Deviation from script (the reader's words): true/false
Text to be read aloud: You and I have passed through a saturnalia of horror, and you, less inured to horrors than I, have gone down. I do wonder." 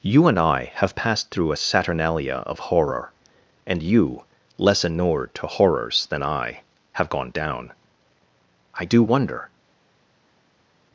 false